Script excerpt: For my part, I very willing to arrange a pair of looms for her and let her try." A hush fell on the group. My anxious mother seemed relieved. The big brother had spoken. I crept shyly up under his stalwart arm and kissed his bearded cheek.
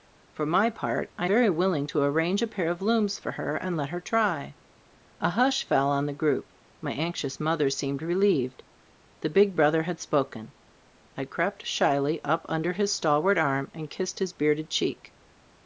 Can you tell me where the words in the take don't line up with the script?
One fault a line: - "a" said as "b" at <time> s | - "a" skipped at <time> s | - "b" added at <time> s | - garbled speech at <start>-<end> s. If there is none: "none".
none